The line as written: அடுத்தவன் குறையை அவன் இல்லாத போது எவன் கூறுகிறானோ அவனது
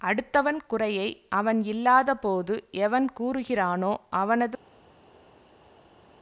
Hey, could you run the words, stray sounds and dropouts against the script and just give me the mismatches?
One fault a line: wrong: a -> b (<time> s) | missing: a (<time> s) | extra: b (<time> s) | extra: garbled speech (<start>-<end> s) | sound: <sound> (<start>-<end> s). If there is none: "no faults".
no faults